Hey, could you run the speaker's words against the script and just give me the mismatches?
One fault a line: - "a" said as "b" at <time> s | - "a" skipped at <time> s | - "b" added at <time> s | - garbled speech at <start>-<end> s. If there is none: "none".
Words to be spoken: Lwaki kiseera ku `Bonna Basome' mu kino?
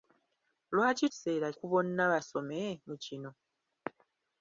none